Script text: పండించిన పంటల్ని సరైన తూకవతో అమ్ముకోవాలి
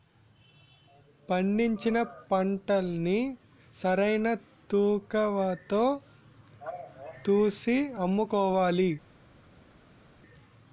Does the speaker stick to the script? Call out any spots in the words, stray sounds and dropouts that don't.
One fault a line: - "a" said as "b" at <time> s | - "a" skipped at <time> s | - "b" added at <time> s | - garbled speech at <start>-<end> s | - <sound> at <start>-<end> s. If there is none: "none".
- "తూసి" added at 7.2 s